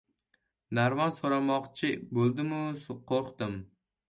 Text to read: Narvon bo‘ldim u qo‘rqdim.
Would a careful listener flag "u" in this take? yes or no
no